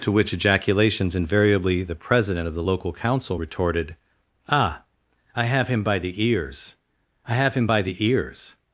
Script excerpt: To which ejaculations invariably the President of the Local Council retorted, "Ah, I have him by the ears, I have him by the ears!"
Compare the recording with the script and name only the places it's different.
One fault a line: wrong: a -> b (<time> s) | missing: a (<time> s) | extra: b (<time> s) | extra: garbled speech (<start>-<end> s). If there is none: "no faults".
no faults